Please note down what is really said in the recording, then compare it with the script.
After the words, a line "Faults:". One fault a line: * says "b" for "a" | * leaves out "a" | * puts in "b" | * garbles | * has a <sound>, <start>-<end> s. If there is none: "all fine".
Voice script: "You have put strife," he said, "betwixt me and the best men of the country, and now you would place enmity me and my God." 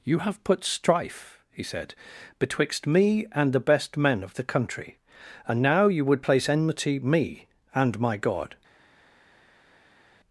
"You have put strife," he said, "betwixt me and the best men of the country, and now you would place enmity me and my God."
Faults:
all fine